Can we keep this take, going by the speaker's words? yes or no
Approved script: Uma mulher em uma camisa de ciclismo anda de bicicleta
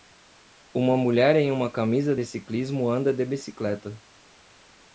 yes